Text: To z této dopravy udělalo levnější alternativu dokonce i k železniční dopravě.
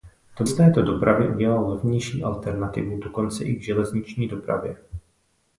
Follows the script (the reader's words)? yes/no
yes